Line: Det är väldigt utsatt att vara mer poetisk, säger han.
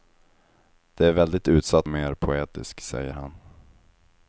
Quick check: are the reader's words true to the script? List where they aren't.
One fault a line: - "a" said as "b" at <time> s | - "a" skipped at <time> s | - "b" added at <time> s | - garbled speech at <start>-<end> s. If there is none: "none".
- "att vara" skipped at 1.9 s